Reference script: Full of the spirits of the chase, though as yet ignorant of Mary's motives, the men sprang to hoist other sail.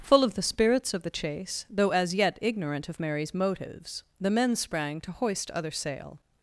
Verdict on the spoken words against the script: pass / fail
pass